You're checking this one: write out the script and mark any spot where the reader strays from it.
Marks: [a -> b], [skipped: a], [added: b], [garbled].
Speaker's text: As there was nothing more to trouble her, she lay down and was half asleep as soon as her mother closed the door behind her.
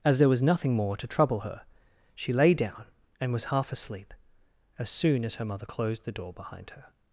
As there was nothing more to trouble her, she lay down and was half asleep as soon as her mother closed the door behind her.